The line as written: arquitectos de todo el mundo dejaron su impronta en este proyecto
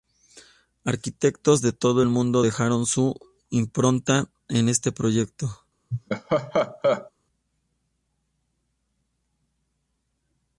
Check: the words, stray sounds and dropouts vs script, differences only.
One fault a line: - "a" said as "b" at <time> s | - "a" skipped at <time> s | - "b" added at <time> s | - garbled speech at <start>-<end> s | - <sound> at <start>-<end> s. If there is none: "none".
- laugh at 5.9-7.1 s